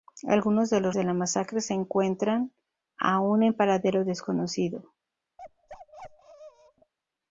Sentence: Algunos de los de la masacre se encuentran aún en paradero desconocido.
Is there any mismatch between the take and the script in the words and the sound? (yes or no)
yes